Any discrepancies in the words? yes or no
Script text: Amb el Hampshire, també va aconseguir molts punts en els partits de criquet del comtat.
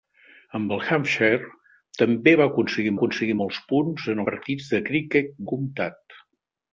yes